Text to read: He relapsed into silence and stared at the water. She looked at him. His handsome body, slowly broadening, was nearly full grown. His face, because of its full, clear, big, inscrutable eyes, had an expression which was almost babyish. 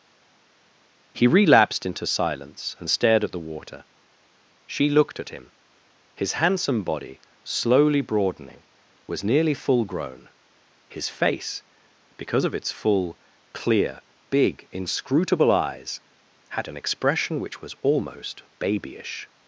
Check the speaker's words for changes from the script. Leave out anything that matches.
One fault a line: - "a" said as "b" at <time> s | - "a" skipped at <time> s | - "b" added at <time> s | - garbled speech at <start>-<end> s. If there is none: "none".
none